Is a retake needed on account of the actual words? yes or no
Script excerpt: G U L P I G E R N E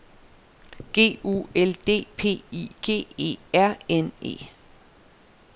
yes